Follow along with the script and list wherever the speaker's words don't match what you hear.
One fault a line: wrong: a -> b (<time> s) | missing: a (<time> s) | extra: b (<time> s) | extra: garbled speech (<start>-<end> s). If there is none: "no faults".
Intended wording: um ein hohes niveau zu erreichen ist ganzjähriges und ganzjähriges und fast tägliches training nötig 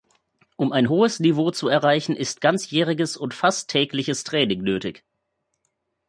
missing: ganzjähriges und (3.3 s)